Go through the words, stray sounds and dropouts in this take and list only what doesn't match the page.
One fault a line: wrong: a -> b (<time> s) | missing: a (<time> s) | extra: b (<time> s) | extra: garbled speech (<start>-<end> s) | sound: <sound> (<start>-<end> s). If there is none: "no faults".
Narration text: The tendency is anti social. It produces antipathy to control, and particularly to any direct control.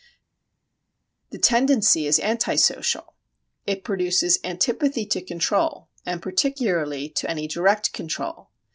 no faults